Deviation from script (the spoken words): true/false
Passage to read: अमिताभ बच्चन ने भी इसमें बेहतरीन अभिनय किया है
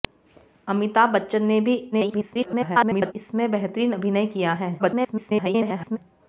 true